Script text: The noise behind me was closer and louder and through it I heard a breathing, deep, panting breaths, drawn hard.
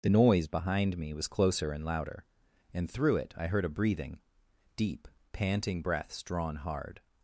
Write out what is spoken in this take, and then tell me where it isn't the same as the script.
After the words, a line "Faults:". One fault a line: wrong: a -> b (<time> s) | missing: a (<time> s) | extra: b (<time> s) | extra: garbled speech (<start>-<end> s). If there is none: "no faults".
The noise behind me was closer and louder and through it I heard a breathing, deep, panting breaths, drawn hard.
Faults:
no faults